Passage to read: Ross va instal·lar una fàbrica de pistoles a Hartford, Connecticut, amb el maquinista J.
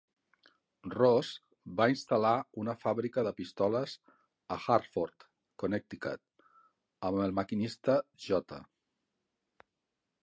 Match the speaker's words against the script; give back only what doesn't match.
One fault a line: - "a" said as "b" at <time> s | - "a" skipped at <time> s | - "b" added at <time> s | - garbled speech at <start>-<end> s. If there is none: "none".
none